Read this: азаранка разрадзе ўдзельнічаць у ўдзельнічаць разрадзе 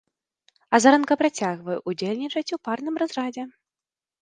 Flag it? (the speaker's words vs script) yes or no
yes